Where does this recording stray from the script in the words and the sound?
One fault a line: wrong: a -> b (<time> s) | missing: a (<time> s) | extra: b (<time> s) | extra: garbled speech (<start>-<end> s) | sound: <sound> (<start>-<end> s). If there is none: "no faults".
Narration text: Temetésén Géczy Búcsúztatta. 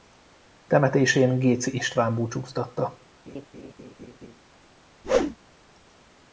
extra: István (1.7 s)
sound: laugh (3.3-4.4 s)
sound: whoosh (5.0-5.4 s)